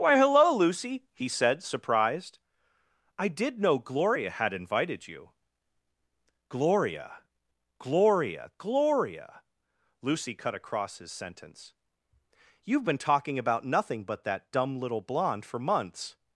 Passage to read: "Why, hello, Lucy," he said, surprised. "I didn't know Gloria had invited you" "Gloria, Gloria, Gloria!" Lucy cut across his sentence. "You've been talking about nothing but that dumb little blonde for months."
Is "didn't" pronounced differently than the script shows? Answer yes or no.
yes